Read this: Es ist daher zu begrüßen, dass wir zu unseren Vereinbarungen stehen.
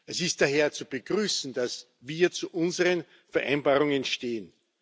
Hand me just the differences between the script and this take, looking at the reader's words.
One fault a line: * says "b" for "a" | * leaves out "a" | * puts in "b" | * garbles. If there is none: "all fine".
all fine